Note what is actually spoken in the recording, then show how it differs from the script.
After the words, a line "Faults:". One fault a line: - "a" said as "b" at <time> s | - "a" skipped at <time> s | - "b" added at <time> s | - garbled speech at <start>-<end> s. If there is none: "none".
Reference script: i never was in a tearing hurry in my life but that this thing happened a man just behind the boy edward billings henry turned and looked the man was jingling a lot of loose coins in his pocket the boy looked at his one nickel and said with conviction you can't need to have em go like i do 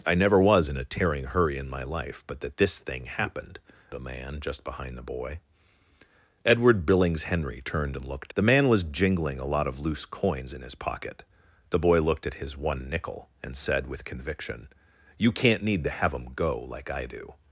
i never was in a tearing hurry in my life but that this thing happened a man just behind the boy edward billings henry turned and looked the man was jingling a lot of loose coins in his pocket the boy looked at his one nickel and said with conviction you can't need to have em go like i do
Faults:
none